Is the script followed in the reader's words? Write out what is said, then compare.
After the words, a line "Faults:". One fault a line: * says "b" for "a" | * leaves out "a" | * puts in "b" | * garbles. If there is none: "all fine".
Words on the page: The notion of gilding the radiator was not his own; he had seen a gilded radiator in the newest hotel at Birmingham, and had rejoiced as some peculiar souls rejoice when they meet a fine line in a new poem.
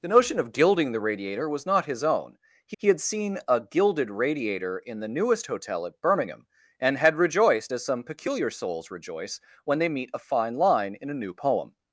The notion of gilding the radiator was not his own; he he had seen a gilded radiator in the newest hotel at Birmingham, and had rejoiced as some peculiar souls rejoice when they meet a fine line in a new poem.
Faults:
* puts in "he"